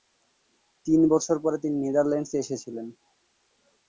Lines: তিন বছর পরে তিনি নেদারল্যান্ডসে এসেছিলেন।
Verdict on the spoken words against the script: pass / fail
pass